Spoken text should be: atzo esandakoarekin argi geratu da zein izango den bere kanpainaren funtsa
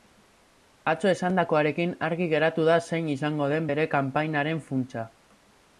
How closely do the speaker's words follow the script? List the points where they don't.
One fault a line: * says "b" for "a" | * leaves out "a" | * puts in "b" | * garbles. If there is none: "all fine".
all fine